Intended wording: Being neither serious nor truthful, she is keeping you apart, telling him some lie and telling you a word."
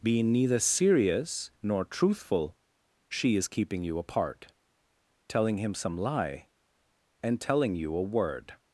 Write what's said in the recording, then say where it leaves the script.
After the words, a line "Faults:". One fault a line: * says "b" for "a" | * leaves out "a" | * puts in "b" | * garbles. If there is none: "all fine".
Being neither serious nor truthful, she is keeping you apart, telling him some lie and telling you a word."
Faults:
all fine